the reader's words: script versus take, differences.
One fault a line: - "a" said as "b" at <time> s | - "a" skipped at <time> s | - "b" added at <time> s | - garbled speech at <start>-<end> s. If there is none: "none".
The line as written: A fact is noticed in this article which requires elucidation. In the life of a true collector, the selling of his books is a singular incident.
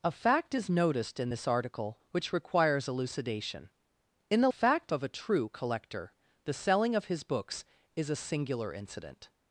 - "life" said as "fact" at 4.5 s